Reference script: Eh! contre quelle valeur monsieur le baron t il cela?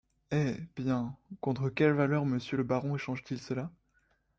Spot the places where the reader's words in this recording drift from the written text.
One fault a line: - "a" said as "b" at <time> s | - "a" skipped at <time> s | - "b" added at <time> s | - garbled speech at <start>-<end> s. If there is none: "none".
- "bien" added at 0.8 s
- "échange" added at 2.9 s